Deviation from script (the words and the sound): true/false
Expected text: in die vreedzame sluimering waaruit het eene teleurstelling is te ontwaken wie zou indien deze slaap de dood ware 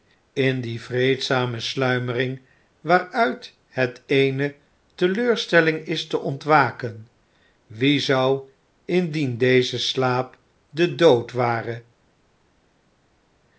false